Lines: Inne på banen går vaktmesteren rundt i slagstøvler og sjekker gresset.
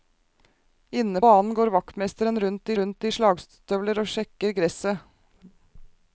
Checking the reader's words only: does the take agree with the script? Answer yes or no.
no